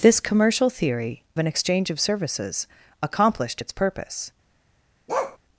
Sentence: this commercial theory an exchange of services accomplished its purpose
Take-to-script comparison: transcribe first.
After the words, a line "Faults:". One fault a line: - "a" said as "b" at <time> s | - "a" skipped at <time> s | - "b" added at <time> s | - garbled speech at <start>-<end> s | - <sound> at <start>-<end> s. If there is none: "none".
this commercial theory an exchange of services accomplished its purpose
Faults:
- bark at 5.1-5.4 s